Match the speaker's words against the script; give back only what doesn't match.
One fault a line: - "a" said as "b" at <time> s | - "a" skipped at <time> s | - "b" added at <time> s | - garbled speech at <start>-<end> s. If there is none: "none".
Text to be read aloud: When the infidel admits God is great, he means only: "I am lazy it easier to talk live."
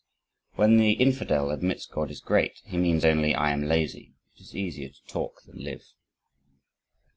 - "is" added at 4.4 s
- "than" added at 5.4 s